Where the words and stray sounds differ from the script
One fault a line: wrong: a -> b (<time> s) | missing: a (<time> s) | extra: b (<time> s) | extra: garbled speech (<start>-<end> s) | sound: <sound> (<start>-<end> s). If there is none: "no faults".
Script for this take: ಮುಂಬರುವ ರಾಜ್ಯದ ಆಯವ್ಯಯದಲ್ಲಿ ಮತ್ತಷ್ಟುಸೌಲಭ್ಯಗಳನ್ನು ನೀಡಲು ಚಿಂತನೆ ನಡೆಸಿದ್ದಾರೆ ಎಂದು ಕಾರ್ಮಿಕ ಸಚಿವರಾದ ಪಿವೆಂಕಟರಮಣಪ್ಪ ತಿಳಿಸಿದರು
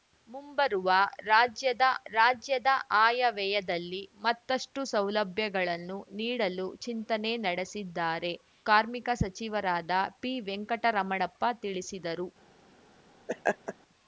extra: ರಾಜ್ಯದ (2.1 s)
missing: ಎಂದು (8.3 s)
sound: laugh (13.3-13.7 s)